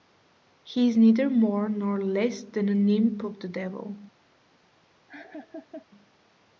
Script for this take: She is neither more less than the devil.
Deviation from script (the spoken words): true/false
true